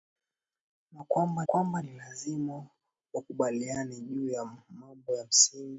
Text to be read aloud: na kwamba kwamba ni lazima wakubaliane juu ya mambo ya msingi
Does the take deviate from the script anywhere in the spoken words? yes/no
no